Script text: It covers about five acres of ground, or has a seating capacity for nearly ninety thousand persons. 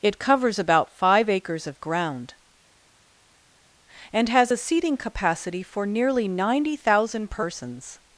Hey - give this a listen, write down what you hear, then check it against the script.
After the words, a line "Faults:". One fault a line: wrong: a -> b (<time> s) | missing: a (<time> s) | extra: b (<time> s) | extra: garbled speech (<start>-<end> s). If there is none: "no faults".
It covers about five acres of ground, and has a seating capacity for nearly ninety thousand persons.
Faults:
wrong: or -> and (4.1 s)